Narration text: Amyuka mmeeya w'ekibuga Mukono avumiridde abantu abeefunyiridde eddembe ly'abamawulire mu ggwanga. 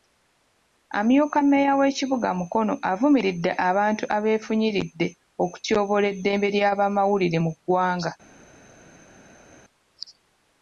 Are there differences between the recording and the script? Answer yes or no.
yes